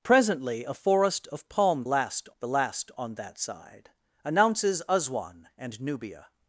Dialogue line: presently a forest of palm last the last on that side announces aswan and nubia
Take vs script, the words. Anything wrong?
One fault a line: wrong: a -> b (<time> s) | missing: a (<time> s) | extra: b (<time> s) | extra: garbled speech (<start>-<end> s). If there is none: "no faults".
no faults